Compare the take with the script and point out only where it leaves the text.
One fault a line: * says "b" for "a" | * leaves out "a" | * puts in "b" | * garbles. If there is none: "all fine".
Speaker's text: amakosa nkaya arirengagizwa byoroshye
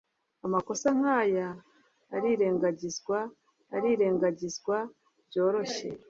* puts in "arirengagizwa"